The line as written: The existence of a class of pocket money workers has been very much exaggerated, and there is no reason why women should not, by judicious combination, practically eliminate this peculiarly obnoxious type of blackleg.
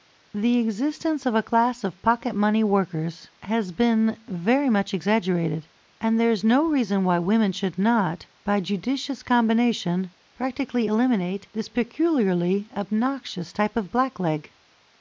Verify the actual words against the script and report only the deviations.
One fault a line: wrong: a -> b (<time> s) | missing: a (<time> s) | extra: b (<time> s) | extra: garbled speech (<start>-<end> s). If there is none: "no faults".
no faults